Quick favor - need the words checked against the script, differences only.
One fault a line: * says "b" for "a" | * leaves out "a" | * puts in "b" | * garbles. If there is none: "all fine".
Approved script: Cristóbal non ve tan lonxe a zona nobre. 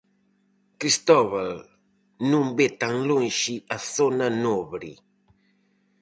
all fine